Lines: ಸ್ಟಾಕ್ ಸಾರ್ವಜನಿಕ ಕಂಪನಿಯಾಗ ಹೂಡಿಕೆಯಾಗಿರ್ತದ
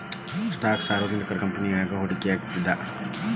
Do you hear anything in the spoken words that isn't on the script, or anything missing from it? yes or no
no